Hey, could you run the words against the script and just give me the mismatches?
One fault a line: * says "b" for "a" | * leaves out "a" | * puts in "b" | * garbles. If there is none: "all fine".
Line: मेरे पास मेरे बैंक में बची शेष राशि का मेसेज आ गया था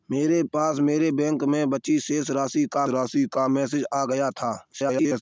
* puts in "राशि का"
* garbles